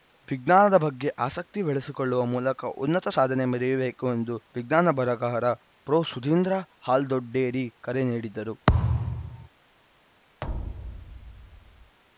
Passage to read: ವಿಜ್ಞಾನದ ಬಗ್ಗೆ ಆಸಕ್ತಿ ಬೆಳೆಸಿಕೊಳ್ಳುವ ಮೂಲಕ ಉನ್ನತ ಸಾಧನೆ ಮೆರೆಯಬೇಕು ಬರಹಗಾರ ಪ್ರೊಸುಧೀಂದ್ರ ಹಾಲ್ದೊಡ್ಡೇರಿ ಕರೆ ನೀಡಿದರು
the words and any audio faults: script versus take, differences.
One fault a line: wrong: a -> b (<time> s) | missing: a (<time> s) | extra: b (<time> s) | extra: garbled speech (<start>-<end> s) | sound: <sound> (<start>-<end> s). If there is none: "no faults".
extra: ಎಂದು ವಿಜ್ಞಾನ (4.1 s)
sound: thud (8.7-9.5 s)
sound: thud (10.4-12.0 s)